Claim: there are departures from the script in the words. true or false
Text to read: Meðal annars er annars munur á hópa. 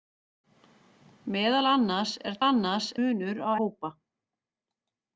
false